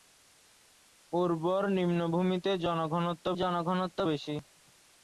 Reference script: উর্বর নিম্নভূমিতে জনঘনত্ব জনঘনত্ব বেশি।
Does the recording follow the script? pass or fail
pass